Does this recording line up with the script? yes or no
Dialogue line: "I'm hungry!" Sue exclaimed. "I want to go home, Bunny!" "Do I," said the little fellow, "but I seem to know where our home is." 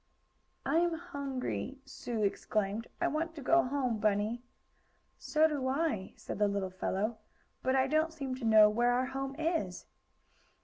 no